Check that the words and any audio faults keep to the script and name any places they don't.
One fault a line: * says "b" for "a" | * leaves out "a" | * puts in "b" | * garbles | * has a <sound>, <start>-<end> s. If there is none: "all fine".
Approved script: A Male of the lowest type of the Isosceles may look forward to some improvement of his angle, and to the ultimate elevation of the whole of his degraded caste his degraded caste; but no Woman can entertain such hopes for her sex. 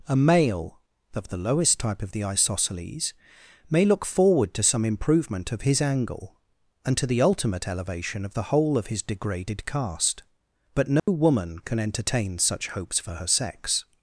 * leaves out "his degraded caste"
* has a dropout, 11.0-11.1 s